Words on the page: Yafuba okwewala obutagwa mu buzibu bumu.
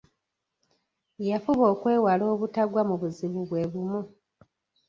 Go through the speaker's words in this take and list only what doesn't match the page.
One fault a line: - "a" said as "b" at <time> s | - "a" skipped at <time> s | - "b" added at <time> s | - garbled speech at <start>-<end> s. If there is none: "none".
- "bwe" added at 3.5 s